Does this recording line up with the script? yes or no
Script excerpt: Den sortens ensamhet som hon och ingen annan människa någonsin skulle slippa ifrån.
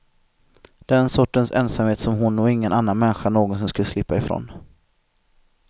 yes